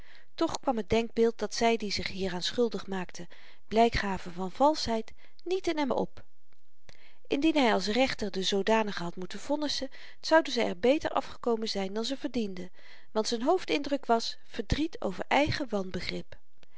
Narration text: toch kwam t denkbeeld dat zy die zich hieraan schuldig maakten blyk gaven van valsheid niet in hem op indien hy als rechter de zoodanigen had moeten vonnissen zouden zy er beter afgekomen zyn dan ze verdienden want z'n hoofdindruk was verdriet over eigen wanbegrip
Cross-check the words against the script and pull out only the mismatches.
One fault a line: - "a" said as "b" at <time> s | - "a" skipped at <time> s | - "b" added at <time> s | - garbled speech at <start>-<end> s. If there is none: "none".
none